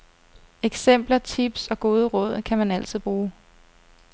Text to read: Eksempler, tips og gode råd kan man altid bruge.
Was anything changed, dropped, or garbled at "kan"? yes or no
no